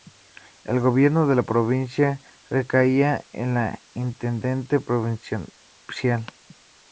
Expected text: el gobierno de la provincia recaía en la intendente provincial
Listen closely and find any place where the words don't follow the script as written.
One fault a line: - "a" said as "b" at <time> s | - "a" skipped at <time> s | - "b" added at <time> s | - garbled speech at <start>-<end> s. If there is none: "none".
- "la" said as "el" at 3.6 s